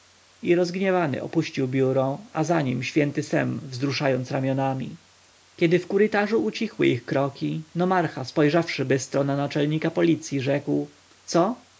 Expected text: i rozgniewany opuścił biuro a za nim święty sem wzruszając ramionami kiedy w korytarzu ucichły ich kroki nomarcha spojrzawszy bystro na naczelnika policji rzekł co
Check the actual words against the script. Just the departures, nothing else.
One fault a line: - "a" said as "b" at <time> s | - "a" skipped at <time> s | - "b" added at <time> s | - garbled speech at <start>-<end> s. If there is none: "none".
none